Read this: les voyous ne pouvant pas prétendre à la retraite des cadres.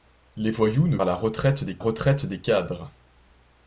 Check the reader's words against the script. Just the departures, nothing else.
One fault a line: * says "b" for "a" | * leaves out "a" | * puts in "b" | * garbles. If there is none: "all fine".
* says "à la retraite des" for "pouvant pas prétendre à la"